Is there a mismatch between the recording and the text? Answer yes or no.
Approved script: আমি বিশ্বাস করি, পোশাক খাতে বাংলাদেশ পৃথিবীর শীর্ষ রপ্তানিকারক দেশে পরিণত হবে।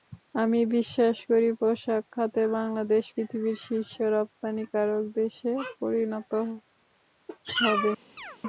no